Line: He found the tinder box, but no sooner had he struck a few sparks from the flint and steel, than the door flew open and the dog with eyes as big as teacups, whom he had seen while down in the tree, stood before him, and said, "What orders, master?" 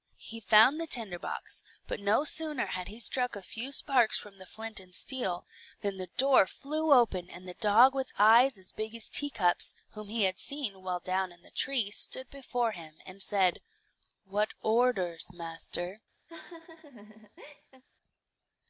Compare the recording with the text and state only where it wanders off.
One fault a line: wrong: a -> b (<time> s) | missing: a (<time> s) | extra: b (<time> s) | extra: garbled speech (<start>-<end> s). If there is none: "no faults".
no faults